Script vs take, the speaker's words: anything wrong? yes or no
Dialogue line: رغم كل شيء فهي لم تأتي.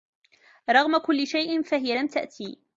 no